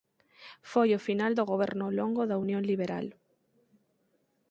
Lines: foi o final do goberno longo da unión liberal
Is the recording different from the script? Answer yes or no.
no